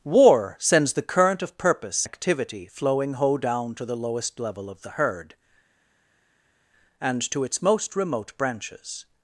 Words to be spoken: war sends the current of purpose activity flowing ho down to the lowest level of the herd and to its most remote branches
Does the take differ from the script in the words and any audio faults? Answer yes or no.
no